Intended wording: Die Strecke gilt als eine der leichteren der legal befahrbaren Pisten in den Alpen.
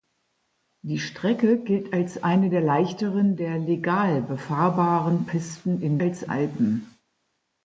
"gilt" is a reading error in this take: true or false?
false